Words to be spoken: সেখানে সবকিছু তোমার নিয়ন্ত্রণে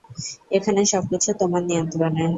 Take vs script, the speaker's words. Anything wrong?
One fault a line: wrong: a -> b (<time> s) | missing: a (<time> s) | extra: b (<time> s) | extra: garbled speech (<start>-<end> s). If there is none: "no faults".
wrong: সেখানে -> এখানে (0.5 s)